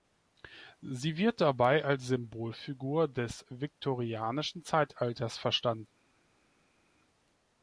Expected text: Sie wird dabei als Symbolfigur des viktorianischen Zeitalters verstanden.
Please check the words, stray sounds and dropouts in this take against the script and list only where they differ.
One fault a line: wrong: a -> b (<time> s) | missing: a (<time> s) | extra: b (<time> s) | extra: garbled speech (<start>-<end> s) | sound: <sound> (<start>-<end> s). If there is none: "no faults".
no faults